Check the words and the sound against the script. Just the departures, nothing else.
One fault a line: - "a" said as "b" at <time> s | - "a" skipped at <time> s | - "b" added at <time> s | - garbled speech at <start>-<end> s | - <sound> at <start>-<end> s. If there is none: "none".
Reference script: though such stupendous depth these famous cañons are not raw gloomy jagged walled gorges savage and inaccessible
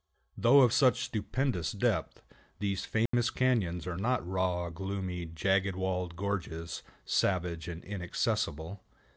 - "of" added at 0.6 s
- dropout at 3.1-3.1 s